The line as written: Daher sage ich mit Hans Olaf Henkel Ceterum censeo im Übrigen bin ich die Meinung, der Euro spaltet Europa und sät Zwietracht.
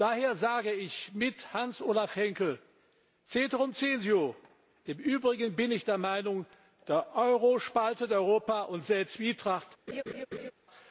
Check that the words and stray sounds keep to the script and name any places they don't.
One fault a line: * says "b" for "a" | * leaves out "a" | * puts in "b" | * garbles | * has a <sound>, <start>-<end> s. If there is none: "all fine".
* says "der" for "die"
* has a laugh, 9.9-10.5 s